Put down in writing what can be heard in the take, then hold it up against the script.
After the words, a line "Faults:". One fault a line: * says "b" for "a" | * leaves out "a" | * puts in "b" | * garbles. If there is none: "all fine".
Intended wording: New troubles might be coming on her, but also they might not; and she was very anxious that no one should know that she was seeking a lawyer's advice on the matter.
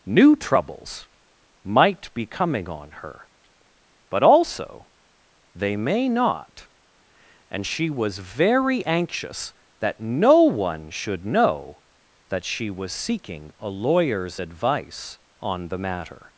New troubles might be coming on her, but also they may not; and she was very anxious that no one should know that she was seeking a lawyer's advice on the matter.
Faults:
* says "may" for "might"